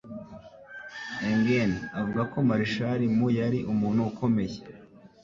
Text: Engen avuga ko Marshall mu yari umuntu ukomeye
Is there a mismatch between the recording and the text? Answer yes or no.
no